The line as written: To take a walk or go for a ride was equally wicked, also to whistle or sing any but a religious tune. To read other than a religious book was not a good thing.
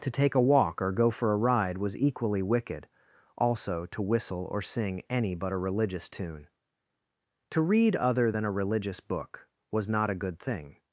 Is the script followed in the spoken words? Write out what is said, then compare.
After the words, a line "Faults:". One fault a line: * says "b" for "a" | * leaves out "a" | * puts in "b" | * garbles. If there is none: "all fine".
To take a walk or go for a ride was equally wicked, also to whistle or sing any but a religious tune. To read other than a religious book was not a good thing.
Faults:
all fine